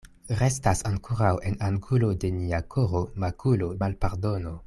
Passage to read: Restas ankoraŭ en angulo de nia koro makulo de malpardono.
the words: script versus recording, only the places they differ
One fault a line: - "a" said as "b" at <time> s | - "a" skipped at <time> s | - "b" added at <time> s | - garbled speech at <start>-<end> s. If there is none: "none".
- "de" skipped at 3.7 s